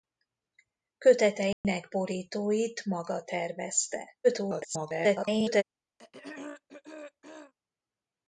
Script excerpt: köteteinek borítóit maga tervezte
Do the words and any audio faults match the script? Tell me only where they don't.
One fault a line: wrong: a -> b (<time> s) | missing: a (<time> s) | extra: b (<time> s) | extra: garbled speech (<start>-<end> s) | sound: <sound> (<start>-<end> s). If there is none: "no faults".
sound: dropout (1.5-1.6 s)
extra: garbled speech (4.2-5.6 s)
sound: throat clearing (6.0-7.5 s)